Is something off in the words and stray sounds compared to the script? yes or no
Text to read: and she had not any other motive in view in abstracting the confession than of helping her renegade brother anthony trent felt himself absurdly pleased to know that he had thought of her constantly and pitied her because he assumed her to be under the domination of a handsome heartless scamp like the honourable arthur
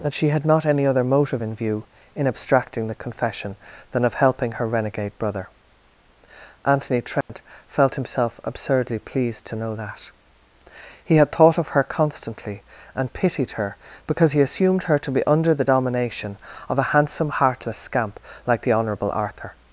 yes